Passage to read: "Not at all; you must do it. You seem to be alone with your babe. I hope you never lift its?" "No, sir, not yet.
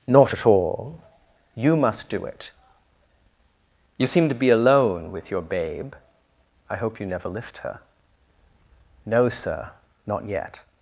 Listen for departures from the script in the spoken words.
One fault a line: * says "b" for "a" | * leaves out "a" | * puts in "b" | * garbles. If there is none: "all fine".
* says "her" for "its"